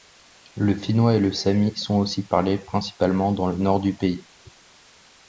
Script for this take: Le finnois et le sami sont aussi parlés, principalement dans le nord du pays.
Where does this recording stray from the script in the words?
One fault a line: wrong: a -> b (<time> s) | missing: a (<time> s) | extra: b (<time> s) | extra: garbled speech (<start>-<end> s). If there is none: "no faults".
no faults